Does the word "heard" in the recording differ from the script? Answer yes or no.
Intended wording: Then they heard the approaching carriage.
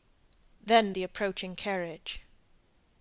yes